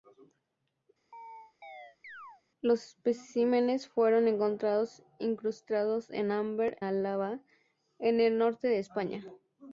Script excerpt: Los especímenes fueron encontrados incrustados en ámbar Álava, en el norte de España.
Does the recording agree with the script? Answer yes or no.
yes